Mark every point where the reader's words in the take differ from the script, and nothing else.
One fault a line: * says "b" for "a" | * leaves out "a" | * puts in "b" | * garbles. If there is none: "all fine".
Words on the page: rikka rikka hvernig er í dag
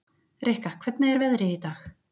* leaves out "rikka"
* puts in "veðrið"